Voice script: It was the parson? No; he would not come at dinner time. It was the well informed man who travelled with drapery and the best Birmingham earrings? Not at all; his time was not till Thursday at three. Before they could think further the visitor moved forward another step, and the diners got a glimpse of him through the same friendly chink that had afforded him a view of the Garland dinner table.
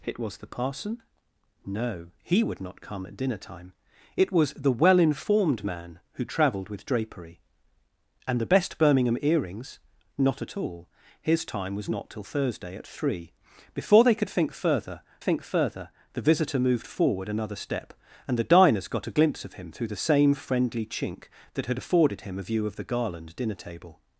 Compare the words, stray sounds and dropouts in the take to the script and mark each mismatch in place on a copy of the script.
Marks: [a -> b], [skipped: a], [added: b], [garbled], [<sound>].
It was the parson? No; he would not come at dinner time. It was the well informed man who travelled with drapery and the best Birmingham earrings? Not at all; his time was not till Thursday at three. Before they could think further [added: think further] the visitor moved forward another step, and the diners got a glimpse of him through the same friendly chink that had afforded him a view of the Garland dinner table.